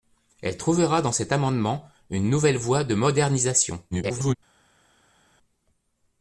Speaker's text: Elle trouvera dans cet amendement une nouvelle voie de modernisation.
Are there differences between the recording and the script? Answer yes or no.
yes